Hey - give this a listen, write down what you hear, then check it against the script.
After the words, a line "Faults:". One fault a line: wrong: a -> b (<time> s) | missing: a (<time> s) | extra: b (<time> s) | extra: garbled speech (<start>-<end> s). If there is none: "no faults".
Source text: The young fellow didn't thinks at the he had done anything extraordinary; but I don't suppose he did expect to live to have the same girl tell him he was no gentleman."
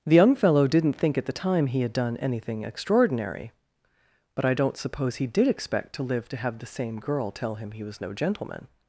The young fellow didn't think at the time he had done anything extraordinary; but I don't suppose he did expect to live to have the same girl tell him he was no gentleman."
Faults:
wrong: thinks -> think (0.9 s)
extra: time (1.3 s)